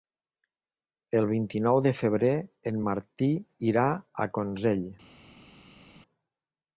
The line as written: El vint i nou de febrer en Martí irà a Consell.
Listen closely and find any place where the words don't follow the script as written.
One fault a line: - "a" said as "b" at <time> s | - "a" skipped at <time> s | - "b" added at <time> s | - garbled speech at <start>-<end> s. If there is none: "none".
none